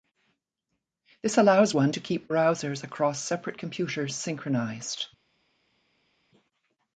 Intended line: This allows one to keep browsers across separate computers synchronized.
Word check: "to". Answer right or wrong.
right